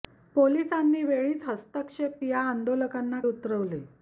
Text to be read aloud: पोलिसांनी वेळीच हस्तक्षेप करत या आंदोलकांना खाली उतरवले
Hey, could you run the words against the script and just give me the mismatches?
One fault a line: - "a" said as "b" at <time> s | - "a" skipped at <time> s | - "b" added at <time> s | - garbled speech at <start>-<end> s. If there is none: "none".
- "करत" skipped at 2.2 s
- "खाली" skipped at 3.2 s